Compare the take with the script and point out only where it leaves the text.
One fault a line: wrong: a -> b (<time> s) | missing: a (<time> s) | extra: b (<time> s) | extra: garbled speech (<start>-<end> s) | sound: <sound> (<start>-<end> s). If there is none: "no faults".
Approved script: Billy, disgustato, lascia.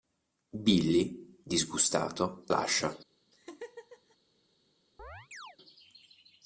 sound: laugh (3.3-4.2 s)
sound: chirp (5.0-5.6 s)